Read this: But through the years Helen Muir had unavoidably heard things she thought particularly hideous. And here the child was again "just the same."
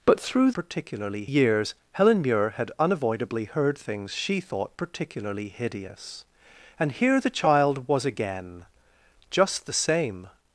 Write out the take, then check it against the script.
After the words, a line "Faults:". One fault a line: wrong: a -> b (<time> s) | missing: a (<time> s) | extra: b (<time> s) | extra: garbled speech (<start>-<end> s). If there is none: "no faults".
But through particularly years Helen Muir had unavoidably heard things she thought particularly hideous. And here the child was again "just the same."
Faults:
wrong: the -> particularly (0.5 s)